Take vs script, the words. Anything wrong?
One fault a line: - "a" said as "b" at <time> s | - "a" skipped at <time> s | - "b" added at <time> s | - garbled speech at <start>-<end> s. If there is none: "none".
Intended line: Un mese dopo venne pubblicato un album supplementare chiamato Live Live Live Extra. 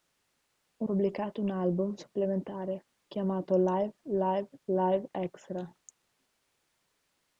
- "mese dopo venne" skipped at 0.9 s